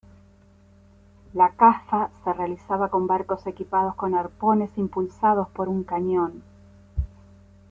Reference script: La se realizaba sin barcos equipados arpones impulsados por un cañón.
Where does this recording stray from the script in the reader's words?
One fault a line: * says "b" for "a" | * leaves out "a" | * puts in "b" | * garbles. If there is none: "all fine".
* puts in "caza"
* says "con" for "sin"
* puts in "con"